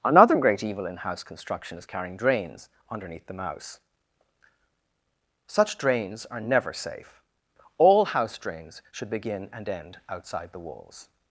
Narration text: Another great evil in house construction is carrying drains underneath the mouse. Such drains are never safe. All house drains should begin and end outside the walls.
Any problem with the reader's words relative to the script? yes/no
no